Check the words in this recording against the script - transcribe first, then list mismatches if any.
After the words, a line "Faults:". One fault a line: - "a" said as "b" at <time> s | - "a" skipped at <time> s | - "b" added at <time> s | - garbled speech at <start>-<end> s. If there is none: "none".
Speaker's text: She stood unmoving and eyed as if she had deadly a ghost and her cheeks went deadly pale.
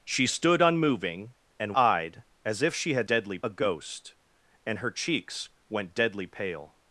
She stood unmoving and eyed as if she had deadly a ghost and her cheeks went deadly pale.
Faults:
none